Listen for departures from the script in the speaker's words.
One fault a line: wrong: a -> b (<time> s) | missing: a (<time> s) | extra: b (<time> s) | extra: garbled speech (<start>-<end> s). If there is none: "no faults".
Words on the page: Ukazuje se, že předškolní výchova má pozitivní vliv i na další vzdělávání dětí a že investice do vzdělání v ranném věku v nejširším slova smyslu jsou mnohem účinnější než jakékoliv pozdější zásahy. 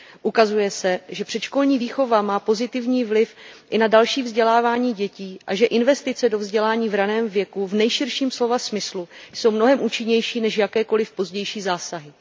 no faults